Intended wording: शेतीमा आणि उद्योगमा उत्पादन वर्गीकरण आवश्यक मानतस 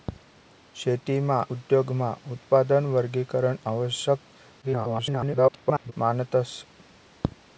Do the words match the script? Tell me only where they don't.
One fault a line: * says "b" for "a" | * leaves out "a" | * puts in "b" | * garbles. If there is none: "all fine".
* leaves out "आणि"
* garbles